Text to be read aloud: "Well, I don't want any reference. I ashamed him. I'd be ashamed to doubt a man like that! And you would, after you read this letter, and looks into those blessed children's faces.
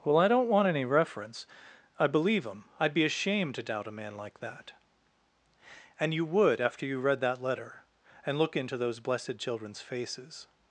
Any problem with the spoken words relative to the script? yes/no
yes